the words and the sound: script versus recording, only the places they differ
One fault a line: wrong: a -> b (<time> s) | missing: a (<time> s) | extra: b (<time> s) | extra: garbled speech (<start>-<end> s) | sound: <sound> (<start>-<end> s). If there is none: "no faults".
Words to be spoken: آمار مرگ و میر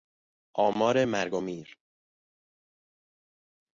no faults